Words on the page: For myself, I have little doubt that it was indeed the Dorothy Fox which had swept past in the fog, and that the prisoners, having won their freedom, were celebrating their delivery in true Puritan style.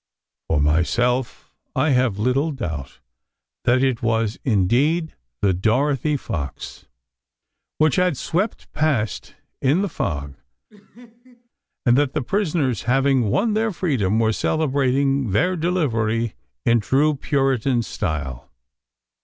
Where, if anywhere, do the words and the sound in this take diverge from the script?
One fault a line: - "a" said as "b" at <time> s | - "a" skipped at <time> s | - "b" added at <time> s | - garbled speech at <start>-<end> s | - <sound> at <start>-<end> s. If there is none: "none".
- laugh at 10.7-11.5 s